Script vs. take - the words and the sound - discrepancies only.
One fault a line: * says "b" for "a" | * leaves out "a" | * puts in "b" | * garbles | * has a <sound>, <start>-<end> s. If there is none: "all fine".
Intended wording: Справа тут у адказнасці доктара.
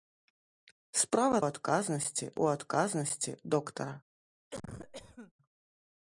* says "адказнасці" for "тут"
* has a cough, 4.5-5.3 s